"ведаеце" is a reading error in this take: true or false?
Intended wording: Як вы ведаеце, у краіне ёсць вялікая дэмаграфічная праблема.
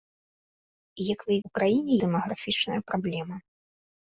true